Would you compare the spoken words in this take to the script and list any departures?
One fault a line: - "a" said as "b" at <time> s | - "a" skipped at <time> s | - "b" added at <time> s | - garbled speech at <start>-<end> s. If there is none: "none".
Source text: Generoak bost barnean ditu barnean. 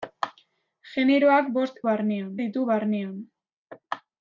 none